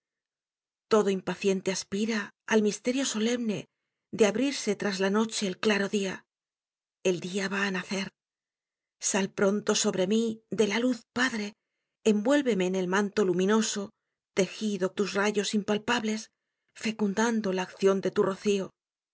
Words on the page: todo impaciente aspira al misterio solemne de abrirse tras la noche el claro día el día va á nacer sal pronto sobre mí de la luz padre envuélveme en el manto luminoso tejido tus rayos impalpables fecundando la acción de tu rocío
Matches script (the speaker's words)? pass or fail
pass